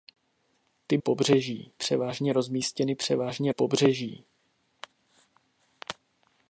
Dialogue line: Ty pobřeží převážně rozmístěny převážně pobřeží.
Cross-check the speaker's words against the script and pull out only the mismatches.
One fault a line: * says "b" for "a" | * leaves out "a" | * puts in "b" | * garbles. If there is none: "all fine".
all fine